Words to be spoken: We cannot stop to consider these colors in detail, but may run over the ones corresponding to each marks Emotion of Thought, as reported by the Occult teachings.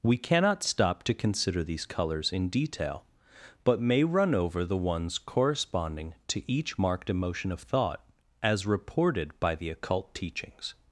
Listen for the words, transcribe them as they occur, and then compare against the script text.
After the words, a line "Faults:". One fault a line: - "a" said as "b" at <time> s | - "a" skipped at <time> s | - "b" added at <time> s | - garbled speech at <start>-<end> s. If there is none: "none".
We cannot stop to consider these colors in detail, but may run over the ones corresponding to each marked Emotion of Thought, as reported by the Occult teachings.
Faults:
- "marks" said as "marked" at 6.8 s